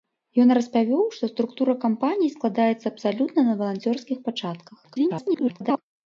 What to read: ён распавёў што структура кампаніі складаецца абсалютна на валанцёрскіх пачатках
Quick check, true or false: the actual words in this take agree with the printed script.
false